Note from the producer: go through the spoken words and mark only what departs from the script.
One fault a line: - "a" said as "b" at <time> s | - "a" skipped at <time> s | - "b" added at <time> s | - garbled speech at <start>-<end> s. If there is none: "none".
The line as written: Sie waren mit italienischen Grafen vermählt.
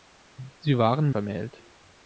- "mit italienischen Grafen" skipped at 1.1 s